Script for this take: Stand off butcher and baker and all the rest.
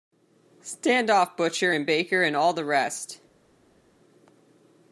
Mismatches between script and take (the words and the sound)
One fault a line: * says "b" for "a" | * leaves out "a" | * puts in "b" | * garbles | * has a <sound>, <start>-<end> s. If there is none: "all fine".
all fine